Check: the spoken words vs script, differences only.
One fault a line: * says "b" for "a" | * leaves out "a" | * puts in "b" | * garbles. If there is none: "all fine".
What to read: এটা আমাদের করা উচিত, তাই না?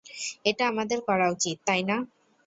all fine